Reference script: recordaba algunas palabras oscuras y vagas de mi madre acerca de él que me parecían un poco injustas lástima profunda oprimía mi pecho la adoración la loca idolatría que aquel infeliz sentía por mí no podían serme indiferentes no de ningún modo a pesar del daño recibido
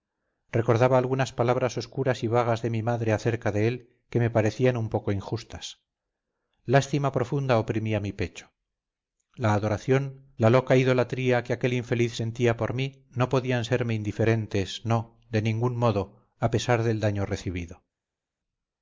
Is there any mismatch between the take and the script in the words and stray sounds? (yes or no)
no